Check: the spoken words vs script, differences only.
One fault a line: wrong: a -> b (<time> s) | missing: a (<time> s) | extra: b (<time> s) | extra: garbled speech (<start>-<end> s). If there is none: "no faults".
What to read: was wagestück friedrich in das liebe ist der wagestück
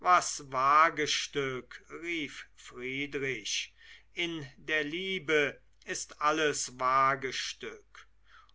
extra: rief (2.0 s)
wrong: das -> der (4.6 s)
wrong: der -> alles (6.2 s)